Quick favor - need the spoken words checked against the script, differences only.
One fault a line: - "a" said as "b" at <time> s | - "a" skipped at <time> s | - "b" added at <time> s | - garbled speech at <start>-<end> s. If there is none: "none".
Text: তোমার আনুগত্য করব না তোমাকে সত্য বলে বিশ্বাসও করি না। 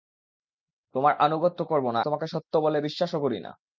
none